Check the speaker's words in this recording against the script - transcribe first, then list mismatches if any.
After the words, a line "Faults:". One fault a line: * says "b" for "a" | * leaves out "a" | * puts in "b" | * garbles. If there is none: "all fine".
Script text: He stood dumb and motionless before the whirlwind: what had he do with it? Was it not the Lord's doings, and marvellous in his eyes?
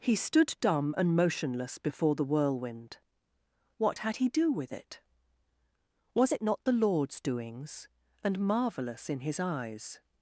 He stood dumb and motionless before the whirlwind: what had he do with it? Was it not the Lord's doings, and marvellous in his eyes?
Faults:
all fine